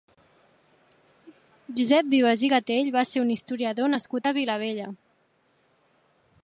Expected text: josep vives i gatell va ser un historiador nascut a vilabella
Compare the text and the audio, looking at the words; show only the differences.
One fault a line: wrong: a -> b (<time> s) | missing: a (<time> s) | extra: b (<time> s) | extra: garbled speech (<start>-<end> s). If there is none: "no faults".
no faults